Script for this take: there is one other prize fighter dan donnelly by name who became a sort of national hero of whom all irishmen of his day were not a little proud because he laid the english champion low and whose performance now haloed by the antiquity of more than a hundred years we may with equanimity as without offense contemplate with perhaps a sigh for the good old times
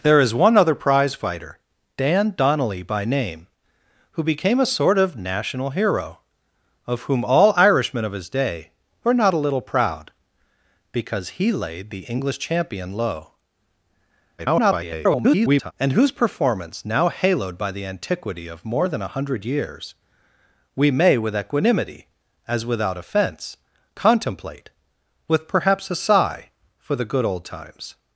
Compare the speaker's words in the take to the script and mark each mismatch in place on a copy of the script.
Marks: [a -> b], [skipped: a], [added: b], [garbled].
there is one other prize fighter dan donnelly by name who became a sort of national hero of whom all irishmen of his day were not a little proud because he laid the english champion low [garbled] and whose performance now haloed by the antiquity of more than a hundred years we may with equanimity as without offense contemplate with perhaps a sigh for the good old times